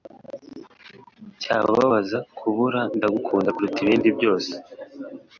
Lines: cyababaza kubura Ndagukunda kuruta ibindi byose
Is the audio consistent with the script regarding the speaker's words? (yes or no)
yes